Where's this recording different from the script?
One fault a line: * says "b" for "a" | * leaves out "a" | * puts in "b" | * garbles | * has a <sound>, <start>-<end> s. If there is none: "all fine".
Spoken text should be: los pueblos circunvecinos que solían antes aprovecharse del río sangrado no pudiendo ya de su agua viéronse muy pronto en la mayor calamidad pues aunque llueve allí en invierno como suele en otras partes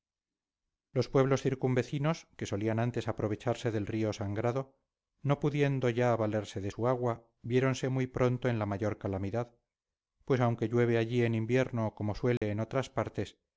* puts in "valerse"
* has a dropout, 12.4-12.4 s